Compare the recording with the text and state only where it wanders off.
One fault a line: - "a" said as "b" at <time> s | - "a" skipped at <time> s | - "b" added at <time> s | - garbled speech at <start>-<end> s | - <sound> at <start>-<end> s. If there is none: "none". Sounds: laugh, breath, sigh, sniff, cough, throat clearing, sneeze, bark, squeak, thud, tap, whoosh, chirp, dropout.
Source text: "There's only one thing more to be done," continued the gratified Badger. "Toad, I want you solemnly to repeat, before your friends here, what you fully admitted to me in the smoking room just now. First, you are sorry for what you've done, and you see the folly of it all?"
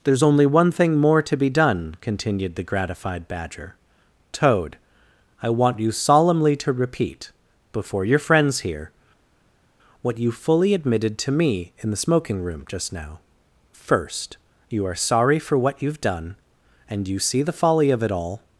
none